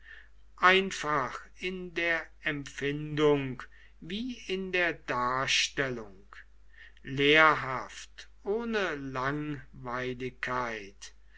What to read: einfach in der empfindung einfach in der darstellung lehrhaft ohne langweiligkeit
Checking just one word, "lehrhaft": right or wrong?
right